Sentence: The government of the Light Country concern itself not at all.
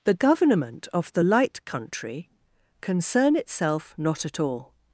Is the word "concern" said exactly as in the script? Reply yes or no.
yes